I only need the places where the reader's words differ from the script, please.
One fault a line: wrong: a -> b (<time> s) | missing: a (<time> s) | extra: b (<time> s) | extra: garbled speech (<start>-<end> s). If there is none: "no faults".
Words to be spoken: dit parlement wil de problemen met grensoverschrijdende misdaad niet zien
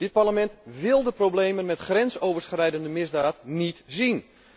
no faults